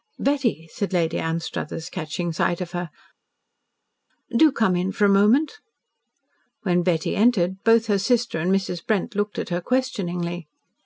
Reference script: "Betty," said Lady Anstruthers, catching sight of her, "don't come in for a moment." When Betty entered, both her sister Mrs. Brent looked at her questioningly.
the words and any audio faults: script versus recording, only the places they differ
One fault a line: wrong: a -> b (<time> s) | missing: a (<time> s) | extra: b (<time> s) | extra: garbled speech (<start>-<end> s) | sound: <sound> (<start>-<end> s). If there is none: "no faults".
wrong: don't -> do (4.3 s)
extra: and (8.4 s)